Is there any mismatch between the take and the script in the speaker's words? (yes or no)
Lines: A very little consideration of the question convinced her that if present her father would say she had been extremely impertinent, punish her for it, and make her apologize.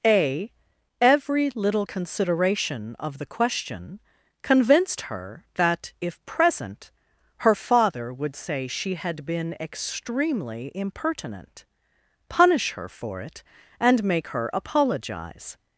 yes